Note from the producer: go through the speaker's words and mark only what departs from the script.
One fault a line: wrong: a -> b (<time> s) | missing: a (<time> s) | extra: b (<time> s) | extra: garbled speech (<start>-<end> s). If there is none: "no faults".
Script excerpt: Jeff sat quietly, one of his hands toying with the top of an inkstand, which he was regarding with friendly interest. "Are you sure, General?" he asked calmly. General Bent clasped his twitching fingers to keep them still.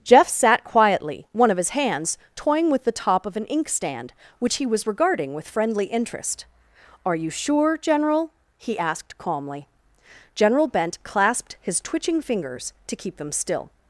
no faults